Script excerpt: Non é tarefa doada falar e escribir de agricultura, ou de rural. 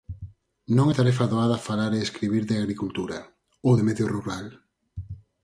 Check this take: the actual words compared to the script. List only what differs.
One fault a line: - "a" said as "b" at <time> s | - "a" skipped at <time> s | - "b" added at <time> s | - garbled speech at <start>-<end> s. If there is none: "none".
- "medio" added at 3.9 s